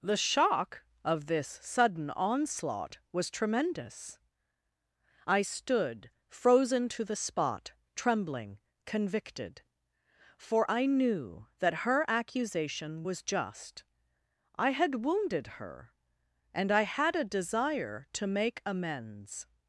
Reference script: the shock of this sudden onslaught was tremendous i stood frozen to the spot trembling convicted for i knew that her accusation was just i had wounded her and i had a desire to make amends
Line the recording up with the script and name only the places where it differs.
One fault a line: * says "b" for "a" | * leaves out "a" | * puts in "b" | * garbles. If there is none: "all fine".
all fine